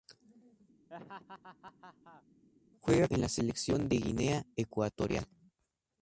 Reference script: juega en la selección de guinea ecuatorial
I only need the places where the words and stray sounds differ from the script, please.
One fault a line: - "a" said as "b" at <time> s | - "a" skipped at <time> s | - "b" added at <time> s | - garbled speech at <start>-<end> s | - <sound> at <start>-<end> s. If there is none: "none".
- laugh at 0.9-2.2 s